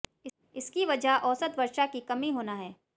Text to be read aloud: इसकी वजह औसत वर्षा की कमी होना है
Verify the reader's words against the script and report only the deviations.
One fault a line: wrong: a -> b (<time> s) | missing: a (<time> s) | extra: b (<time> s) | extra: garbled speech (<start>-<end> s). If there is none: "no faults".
no faults